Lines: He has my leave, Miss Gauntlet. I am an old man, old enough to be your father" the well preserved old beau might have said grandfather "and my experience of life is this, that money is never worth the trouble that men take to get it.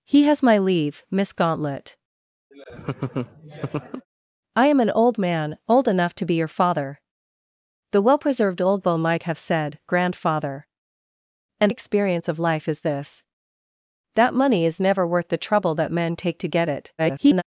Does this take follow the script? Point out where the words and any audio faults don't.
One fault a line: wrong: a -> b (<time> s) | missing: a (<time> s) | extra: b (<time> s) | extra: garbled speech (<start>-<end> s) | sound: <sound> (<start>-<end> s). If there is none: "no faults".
sound: laugh (2.5-4.1 s)
missing: my (11.7 s)
extra: garbled speech (17.0-17.4 s)